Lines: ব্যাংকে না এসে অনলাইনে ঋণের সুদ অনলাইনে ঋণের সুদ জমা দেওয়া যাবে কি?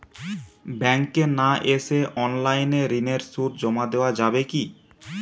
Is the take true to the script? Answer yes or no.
no